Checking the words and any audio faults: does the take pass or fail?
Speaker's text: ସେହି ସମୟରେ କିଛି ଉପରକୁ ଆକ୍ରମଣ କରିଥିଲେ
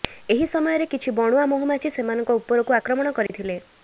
fail